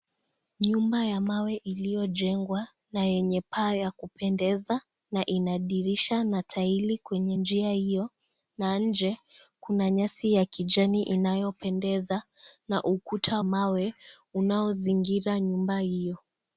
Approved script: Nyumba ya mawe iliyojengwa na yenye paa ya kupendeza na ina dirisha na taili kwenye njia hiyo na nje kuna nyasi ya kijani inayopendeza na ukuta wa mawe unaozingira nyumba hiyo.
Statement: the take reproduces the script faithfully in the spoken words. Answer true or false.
false